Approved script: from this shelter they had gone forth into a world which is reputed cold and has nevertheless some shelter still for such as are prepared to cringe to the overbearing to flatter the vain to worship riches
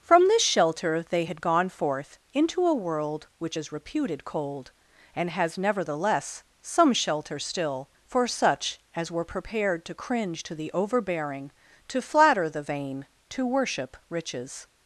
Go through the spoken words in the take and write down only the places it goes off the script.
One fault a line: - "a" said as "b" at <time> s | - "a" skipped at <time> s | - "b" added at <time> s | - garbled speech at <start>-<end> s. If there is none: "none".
- "are" said as "were" at 9.1 s